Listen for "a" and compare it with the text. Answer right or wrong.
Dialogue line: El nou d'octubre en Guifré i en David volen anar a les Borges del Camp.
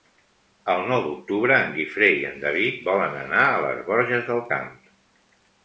right